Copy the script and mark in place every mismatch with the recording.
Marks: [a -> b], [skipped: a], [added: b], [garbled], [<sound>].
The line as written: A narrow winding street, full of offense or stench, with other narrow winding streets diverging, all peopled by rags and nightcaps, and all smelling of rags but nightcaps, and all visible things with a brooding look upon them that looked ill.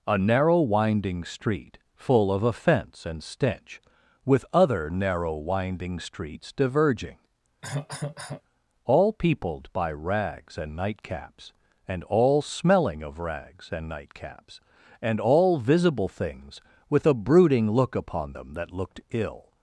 A narrow winding street, full of offense [or -> and] stench, with other narrow winding streets diverging, [cough] all peopled by rags and nightcaps, and all smelling of rags [but -> and] nightcaps, and all visible things with a brooding look upon them that looked ill.